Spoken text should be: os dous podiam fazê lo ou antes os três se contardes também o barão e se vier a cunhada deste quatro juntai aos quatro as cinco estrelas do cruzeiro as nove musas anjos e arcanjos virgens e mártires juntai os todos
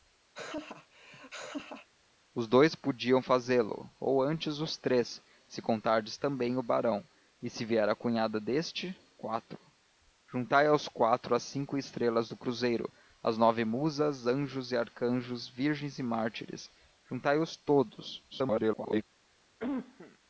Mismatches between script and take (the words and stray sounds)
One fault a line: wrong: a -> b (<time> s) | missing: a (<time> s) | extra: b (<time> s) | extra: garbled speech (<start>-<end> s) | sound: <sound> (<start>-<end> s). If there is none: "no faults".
sound: laugh (0.3-1.9 s)
extra: garbled speech (18.3-19.0 s)
sound: cough (19.6-20.2 s)